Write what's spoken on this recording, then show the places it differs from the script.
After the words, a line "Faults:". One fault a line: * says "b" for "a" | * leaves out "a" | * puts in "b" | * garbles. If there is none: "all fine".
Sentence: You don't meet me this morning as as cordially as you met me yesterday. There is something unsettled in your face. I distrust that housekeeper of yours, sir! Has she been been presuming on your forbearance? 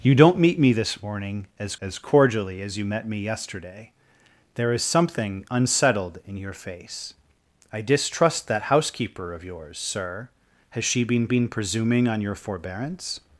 You don't meet me this morning as as cordially as you met me yesterday. There is something unsettled in your face. I distrust that housekeeper of yours, sir! Has she been been presuming on your forbearance?
Faults:
all fine